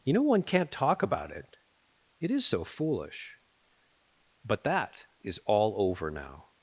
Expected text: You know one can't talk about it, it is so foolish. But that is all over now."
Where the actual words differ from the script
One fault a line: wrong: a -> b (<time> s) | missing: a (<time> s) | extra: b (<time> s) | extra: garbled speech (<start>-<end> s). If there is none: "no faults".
no faults